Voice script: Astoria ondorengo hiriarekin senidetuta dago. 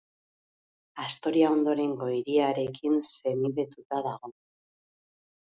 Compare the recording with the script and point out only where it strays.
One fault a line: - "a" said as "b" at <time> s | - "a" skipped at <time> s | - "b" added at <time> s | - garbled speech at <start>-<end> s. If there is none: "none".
none